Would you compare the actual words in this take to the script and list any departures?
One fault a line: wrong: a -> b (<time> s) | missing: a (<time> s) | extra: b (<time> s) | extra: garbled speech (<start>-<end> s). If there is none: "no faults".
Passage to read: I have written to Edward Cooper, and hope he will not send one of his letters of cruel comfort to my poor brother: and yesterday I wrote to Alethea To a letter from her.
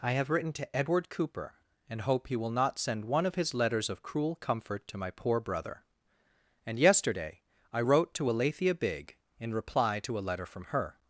extra: Bigg in reply (8.7 s)